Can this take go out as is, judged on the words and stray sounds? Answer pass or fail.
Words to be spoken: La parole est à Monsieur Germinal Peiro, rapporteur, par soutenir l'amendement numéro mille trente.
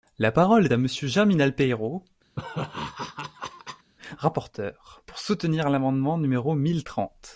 fail